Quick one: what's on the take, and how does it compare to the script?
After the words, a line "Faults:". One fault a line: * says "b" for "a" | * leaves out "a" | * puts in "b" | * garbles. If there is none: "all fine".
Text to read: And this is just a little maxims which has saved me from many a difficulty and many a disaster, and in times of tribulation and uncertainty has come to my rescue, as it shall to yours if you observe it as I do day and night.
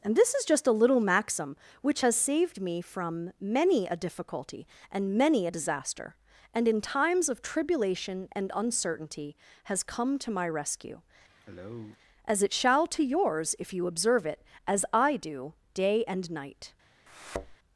And this is just a little maxim which has saved me from many a difficulty and many a disaster, and in times of tribulation and uncertainty has come to my rescue, as it shall to yours if you observe it as I do day and night.
Faults:
* says "maxim" for "maxims"